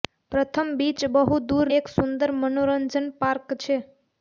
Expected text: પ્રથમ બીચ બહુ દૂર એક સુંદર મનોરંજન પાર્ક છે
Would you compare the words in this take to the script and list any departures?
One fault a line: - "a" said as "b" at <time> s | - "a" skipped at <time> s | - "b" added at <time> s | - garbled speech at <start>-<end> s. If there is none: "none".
none